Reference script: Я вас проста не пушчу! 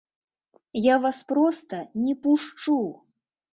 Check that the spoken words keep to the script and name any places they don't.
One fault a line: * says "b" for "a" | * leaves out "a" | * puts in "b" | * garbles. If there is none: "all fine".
all fine